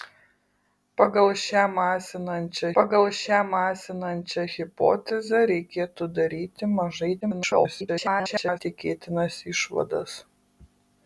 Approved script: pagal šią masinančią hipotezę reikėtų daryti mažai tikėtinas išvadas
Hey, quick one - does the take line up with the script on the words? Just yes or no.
no